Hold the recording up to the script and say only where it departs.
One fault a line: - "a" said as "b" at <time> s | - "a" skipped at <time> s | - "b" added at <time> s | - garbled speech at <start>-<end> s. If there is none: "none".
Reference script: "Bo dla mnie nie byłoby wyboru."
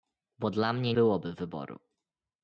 - "nie" skipped at 0.9 s